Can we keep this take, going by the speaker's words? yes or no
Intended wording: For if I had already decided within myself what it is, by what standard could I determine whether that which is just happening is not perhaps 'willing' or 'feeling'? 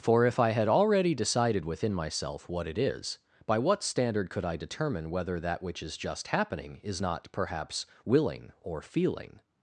yes